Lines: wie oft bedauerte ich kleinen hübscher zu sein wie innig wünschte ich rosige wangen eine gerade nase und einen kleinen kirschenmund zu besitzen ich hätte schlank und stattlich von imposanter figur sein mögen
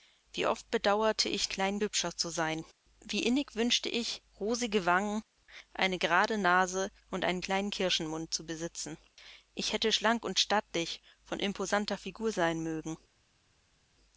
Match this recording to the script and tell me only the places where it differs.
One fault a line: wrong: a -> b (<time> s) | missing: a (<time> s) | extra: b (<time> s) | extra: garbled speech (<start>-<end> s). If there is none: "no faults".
no faults